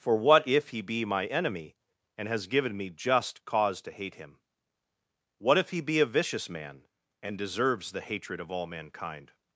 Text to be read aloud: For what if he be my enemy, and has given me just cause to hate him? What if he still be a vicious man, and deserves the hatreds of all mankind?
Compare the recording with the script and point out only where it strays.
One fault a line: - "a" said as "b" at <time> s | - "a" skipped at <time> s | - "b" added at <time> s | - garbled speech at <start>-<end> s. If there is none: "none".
- "still" skipped at 5.8 s
- "hatreds" said as "hatred" at 8.0 s